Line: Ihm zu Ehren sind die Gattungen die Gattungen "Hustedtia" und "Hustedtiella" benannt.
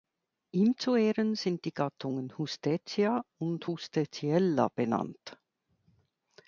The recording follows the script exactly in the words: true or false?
false